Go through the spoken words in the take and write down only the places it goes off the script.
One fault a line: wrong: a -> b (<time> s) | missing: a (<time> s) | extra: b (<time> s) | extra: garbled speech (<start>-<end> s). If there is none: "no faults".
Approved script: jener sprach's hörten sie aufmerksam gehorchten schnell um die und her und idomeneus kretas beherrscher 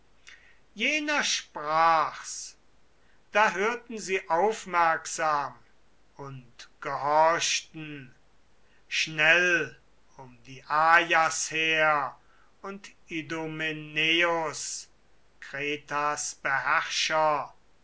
extra: da (3.3 s)
extra: und (6.2 s)
wrong: und -> ajas (10.7 s)